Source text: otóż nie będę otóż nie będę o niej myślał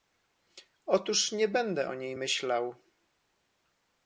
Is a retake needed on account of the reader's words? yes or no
yes